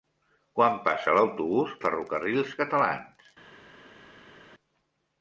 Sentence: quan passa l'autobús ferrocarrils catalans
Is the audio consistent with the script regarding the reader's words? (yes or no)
yes